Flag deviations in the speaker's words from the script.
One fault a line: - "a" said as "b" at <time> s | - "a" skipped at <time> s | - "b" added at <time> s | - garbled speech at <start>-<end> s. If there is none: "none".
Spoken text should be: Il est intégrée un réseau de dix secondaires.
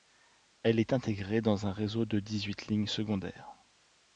- "Il" said as "Elle" at 0.6 s
- "dans" added at 1.4 s
- "huit lignes" added at 2.5 s